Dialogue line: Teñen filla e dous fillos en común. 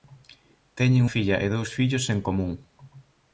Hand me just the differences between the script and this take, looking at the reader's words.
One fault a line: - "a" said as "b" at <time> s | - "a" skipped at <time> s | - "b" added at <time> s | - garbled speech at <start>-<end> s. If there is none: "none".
none